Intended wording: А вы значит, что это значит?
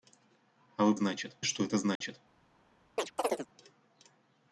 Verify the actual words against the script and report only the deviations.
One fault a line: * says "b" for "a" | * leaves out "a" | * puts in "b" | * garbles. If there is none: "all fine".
all fine